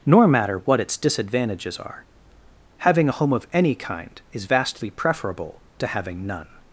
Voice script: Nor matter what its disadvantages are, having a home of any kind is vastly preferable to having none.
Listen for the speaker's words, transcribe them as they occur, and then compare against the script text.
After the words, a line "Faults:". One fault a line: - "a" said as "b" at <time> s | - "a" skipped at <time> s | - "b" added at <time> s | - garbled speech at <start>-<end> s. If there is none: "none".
Nor matter what its disadvantages are, having a home of any kind is vastly preferable to having none.
Faults:
none